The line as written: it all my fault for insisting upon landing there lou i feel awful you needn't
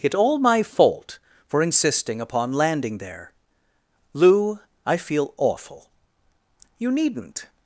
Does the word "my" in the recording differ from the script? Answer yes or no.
no